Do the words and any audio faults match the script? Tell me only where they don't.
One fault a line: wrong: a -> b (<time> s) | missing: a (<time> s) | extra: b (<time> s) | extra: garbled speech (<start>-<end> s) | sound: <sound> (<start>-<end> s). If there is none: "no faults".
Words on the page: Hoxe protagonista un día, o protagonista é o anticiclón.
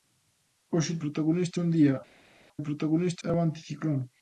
no faults